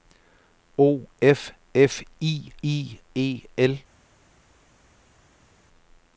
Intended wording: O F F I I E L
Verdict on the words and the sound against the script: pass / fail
pass